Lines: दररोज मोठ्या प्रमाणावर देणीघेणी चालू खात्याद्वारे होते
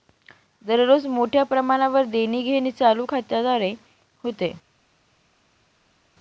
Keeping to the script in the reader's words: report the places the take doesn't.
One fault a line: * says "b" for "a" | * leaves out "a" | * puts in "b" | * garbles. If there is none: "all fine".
all fine